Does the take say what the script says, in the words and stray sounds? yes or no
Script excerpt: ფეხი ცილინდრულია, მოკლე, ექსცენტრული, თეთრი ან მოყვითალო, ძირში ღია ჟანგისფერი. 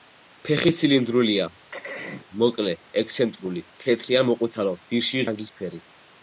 no